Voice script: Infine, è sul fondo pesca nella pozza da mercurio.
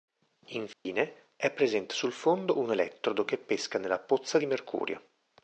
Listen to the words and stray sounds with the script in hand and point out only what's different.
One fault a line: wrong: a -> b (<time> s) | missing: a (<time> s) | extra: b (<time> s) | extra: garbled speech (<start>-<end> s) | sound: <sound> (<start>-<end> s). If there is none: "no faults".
sound: dropout (0.7-0.9 s)
extra: presente (1.5 s)
extra: un elettrodo che (2.6 s)
wrong: da -> di (4.4 s)